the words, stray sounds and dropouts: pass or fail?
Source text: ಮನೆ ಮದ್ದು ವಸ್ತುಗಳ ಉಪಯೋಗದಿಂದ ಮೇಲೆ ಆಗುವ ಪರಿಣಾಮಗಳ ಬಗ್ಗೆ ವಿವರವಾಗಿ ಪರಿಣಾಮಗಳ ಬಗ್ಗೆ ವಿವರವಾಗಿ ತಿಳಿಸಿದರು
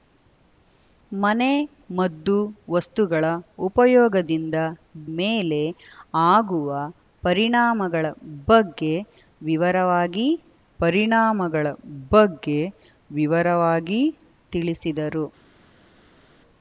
pass